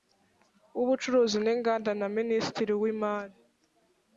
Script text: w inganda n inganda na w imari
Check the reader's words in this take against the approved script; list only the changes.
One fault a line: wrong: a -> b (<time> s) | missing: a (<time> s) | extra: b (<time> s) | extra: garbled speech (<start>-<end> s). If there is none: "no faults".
wrong: inganda -> ubucuruzi (0.8 s)
extra: minisitiri (2.2 s)